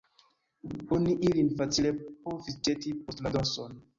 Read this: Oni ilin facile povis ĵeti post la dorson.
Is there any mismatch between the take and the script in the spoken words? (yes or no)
no